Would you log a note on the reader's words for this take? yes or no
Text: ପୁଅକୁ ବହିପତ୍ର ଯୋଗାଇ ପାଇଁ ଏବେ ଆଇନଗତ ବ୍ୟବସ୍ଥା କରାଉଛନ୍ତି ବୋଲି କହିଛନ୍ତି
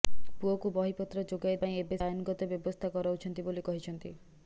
no